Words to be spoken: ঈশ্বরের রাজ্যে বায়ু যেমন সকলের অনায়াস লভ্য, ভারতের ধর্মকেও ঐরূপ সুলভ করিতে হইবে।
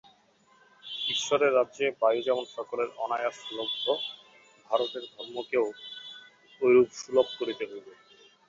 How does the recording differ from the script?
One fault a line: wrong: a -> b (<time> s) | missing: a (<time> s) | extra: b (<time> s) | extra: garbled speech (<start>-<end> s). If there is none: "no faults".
no faults